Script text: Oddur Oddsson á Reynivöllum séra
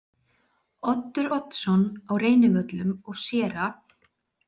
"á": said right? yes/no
yes